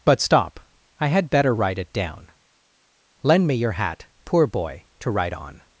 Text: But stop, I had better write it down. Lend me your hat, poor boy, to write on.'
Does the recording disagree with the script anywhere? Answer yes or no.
no